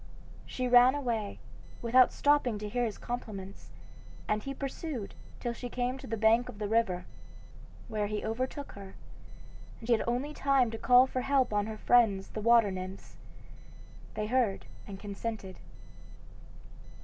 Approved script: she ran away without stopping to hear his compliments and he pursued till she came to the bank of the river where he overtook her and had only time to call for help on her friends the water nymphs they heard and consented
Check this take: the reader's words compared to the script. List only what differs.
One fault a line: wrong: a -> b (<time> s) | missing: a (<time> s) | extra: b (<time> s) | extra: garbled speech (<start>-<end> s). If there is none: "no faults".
no faults